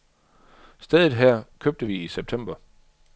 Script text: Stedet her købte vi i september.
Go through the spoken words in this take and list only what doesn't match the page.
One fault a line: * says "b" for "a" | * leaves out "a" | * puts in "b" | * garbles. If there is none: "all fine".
all fine